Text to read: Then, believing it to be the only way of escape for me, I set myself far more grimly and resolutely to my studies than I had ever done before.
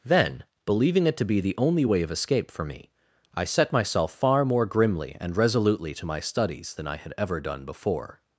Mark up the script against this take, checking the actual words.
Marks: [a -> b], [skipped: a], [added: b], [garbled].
Then, believing it to be the only way of escape for me, I set myself far more grimly and resolutely to my studies than I had ever done before.